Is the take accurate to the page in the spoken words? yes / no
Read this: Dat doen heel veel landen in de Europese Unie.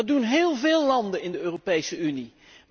yes